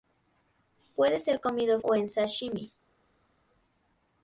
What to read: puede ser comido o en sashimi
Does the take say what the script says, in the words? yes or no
yes